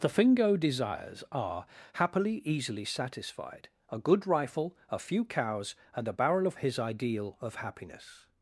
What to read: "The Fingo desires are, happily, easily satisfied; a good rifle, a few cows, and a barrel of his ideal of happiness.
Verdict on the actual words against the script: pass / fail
pass